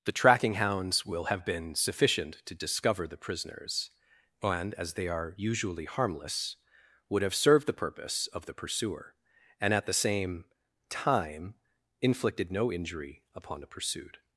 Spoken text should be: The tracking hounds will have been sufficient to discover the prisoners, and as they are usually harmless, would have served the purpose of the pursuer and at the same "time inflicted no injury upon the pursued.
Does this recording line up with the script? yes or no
yes